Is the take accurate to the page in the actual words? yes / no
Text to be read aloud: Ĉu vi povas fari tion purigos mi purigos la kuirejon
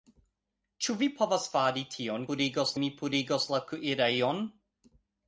yes